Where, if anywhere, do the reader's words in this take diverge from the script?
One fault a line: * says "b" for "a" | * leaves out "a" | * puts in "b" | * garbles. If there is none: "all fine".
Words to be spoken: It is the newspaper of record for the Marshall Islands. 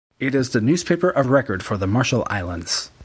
all fine